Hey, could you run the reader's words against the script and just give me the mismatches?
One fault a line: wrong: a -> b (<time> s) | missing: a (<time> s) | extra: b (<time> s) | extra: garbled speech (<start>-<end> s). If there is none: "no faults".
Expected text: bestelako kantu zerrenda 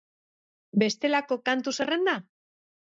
no faults